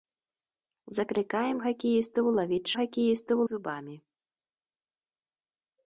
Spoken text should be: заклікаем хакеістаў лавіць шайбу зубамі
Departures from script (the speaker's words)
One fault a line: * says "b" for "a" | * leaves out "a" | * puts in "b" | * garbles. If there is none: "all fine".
* says "хакеістаў" for "шайбу"